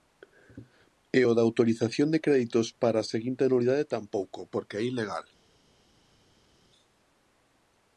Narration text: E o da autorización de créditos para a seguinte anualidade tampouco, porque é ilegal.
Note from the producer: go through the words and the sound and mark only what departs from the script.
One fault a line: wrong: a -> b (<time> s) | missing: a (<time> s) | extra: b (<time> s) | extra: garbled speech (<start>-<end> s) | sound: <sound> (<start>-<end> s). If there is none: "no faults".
no faults